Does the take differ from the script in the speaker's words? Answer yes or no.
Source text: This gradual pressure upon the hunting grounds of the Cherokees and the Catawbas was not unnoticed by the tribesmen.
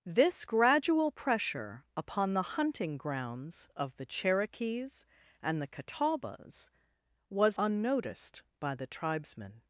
yes